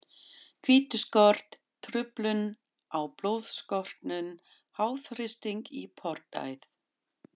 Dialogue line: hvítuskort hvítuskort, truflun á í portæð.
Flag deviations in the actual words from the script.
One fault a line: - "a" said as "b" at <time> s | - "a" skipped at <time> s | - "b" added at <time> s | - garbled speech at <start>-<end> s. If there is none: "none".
- "hvítuskort" skipped at 1.6 s
- "blóðstorknun háþrýsting" added at 3.2 s